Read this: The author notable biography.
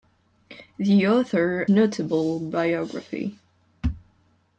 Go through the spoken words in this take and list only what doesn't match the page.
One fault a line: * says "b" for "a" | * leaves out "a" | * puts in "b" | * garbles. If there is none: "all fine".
all fine